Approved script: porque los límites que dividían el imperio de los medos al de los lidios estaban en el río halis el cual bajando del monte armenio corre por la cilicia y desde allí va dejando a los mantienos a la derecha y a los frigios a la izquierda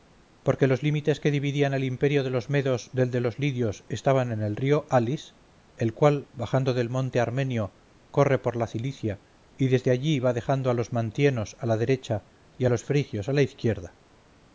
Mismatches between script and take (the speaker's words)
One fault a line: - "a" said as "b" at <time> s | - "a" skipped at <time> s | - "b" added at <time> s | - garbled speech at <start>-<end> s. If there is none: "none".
- "al" said as "del" at 2.9 s